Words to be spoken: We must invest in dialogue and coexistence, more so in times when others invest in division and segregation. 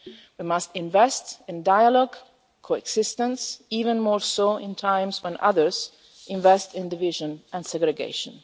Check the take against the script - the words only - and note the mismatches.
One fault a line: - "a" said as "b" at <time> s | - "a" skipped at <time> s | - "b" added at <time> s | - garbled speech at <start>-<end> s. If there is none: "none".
- "even" added at 3.7 s